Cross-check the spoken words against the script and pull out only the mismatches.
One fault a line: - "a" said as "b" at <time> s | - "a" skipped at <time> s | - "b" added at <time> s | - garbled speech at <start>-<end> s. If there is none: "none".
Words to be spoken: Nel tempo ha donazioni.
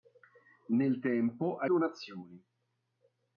none